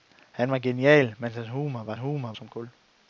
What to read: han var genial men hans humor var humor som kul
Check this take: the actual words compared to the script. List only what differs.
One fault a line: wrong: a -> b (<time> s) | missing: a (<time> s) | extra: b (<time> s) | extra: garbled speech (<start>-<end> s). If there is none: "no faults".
no faults